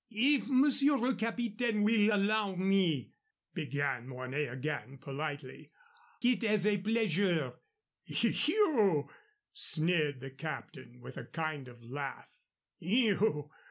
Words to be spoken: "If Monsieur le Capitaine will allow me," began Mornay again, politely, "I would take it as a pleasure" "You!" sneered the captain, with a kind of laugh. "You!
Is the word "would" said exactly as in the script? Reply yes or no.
no